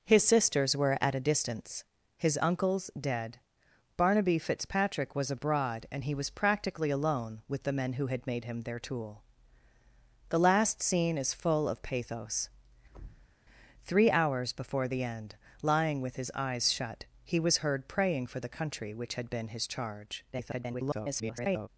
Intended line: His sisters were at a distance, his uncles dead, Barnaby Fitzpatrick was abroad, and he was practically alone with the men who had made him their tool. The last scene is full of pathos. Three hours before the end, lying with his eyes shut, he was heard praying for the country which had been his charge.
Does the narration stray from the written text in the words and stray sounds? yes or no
yes